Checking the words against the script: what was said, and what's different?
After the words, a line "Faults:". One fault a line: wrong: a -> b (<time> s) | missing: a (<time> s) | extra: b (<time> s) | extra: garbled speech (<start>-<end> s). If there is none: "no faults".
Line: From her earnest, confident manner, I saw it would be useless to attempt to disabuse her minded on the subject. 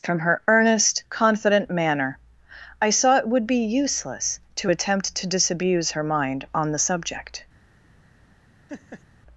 From her earnest, confident manner, I saw it would be useless to attempt to disabuse her mind on the subject.
Faults:
wrong: minded -> mind (6.0 s)